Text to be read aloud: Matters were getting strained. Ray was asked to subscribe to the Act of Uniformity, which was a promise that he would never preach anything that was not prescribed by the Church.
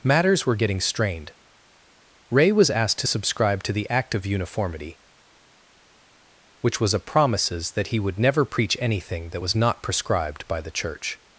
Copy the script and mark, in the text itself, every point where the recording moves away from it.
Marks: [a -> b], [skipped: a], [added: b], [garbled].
Matters were getting strained. Ray was asked to subscribe to the Act of Uniformity, which was a [promise -> promises] that he would never preach anything that was not prescribed by the Church.